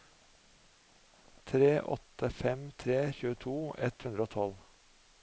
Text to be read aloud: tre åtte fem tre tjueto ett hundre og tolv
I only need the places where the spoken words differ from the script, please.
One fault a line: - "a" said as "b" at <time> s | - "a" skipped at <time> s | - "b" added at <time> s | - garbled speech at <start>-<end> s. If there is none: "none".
none